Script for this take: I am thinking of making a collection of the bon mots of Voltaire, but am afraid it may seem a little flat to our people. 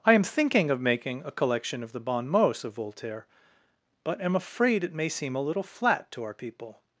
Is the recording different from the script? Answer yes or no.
no